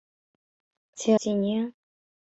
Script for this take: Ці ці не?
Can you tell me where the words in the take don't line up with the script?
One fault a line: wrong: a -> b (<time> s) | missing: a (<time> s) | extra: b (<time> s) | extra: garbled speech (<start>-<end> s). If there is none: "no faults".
no faults